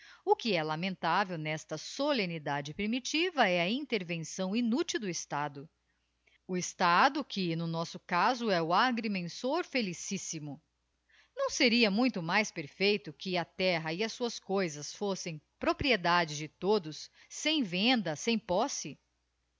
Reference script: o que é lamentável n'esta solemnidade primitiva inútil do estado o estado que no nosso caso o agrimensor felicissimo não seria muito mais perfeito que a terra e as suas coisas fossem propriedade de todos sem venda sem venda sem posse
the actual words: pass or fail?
fail